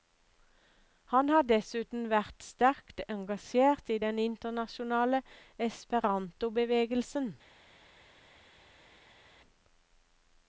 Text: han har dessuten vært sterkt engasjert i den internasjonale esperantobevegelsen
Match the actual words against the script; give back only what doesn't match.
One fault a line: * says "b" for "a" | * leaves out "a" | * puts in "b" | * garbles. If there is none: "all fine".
all fine